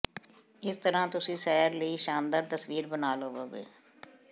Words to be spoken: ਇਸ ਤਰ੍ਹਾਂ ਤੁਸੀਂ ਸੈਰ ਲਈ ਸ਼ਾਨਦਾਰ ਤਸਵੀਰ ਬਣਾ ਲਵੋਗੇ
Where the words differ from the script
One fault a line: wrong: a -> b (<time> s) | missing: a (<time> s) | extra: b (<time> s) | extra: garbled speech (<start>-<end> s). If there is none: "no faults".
no faults